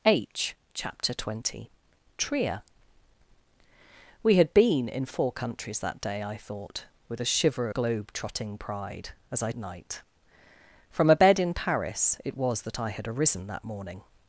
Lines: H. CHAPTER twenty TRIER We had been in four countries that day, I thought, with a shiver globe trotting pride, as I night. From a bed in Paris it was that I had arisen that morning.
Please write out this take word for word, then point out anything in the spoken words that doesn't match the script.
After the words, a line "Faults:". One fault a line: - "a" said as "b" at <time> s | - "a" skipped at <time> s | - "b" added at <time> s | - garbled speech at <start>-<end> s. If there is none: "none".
H. CHAPTER twenty TRIER We had been in four countries that day, I thought, with a shiver globe trotting pride, as I night. From a bed in Paris it was that I had arisen that morning.
Faults:
none